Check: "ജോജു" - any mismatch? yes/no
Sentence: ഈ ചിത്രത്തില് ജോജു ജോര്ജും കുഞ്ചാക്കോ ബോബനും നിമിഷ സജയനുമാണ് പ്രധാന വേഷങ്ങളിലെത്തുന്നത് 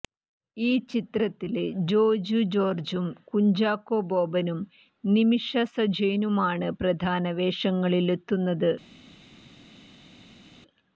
no